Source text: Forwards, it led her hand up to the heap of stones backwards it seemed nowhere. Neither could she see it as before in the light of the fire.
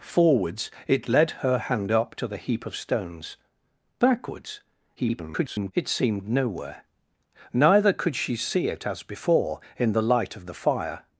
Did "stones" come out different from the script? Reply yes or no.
no